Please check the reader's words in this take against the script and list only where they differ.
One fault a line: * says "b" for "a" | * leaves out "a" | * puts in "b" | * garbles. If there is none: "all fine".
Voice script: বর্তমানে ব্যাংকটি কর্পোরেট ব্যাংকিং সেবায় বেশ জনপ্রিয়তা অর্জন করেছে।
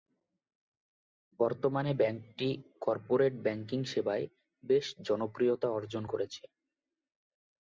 all fine